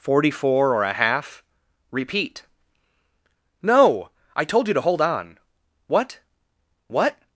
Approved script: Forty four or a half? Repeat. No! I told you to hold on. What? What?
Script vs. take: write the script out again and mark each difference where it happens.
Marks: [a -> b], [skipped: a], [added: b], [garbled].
Forty four or a half? Repeat. No! I told you to hold on. What? What?